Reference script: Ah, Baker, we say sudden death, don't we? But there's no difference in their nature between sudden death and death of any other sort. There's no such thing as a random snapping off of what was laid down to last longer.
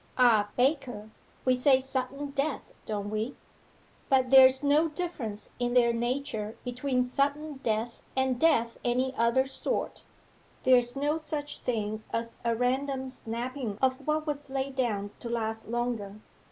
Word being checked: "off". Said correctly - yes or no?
no